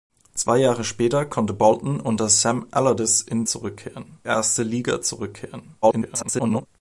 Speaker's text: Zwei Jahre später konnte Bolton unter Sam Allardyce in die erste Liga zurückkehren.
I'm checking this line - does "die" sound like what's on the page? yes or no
no